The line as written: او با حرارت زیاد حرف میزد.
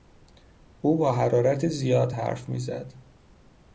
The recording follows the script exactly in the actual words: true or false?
true